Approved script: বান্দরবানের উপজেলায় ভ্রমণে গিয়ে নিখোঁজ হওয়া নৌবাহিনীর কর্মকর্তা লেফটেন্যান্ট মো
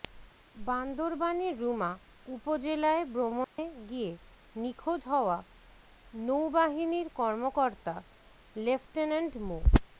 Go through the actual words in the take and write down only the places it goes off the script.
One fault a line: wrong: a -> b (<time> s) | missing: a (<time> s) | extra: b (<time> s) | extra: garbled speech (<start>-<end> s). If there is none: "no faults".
extra: রুমা (1.6 s)